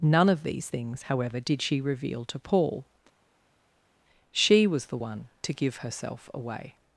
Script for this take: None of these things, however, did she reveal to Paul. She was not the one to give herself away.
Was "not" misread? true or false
true